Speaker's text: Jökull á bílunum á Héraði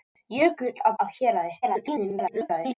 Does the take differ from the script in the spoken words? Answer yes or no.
yes